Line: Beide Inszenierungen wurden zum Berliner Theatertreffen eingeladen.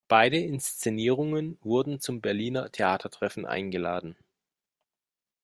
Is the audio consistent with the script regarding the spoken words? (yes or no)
yes